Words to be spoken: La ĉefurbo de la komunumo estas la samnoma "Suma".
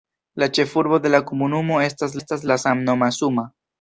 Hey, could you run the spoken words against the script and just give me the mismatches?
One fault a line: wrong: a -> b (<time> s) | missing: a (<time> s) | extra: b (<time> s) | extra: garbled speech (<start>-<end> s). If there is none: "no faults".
extra: estas (2.2 s)